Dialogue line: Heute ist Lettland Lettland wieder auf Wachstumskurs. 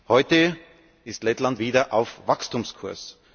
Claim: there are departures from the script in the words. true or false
true